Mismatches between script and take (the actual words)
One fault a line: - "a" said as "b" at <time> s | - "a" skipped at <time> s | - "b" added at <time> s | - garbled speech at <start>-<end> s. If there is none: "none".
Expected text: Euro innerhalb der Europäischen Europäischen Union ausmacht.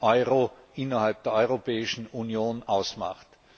- "Europäischen" skipped at 2.1 s